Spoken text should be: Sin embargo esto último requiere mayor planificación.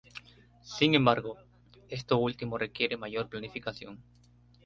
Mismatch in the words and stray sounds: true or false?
false